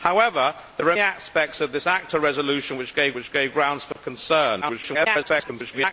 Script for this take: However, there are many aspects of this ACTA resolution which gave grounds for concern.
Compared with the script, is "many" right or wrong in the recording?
wrong